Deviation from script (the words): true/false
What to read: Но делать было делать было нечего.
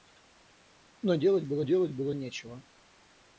false